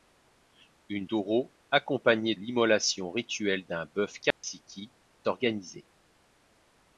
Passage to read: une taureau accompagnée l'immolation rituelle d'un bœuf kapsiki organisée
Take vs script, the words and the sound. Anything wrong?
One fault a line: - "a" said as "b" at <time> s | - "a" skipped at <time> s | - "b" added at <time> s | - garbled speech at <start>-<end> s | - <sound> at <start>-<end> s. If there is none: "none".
- dropout at 4.3-4.4 s